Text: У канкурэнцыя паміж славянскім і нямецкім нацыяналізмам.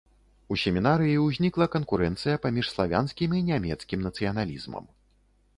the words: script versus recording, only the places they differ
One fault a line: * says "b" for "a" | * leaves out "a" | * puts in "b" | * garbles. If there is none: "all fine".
* puts in "семінарыі ўзнікла"